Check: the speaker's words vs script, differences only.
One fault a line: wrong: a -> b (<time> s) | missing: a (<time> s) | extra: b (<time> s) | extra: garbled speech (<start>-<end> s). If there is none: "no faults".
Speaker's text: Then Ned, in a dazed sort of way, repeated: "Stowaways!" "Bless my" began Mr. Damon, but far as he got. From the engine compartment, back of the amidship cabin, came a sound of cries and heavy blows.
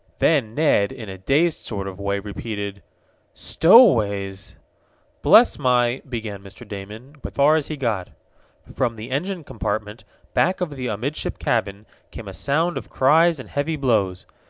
no faults